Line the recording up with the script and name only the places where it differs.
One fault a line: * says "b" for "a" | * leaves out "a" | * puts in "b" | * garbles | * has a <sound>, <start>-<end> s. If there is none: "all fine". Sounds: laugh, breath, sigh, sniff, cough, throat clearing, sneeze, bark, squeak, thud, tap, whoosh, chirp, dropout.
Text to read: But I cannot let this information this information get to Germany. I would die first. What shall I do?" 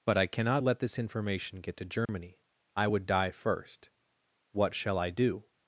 * leaves out "this information"
* has a dropout, 2.1-2.1 s